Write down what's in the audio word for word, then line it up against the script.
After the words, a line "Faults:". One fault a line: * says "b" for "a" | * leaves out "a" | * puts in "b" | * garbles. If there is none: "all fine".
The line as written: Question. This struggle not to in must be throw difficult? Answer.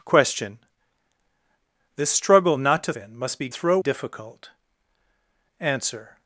Question. This struggle not to in must be throw difficult? Answer.
Faults:
all fine